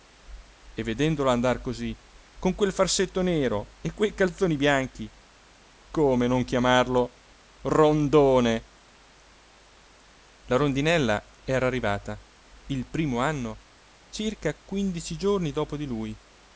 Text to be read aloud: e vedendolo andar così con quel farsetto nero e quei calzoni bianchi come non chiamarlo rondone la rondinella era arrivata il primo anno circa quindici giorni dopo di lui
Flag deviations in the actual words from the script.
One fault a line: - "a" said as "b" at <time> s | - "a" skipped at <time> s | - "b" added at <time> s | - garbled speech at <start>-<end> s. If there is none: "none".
none